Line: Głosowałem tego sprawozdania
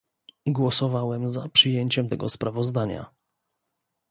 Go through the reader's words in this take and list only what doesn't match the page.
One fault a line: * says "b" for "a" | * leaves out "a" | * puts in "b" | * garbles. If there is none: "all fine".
* puts in "za przyjęciem"